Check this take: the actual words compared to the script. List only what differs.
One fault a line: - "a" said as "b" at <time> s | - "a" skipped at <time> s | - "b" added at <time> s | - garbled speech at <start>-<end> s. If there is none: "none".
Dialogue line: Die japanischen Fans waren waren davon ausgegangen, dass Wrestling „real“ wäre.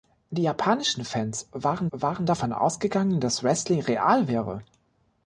none